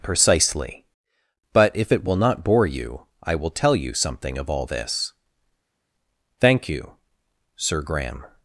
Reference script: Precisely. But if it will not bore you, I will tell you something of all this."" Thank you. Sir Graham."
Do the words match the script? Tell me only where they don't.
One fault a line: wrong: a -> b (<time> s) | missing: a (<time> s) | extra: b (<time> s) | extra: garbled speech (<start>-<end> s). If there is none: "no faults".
no faults